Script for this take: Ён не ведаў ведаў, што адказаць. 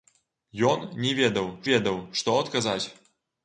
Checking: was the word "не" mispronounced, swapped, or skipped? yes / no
no